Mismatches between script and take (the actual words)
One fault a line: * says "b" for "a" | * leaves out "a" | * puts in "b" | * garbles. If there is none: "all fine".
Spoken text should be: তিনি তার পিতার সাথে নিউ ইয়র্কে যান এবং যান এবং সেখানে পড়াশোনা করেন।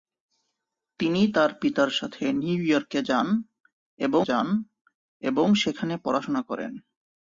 all fine